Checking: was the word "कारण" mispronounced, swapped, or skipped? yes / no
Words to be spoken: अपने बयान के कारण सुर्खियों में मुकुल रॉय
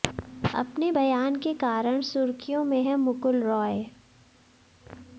no